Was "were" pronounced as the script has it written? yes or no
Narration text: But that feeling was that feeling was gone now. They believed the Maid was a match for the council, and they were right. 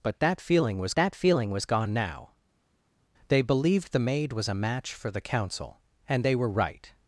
yes